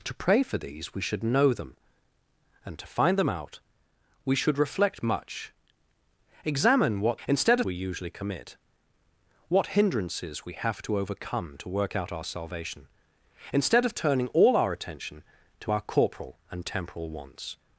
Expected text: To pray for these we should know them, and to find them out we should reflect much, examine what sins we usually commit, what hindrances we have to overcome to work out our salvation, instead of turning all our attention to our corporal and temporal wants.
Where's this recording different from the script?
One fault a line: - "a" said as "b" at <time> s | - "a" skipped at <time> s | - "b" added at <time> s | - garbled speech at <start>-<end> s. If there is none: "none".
- "sins" said as "instead" at 7.3 s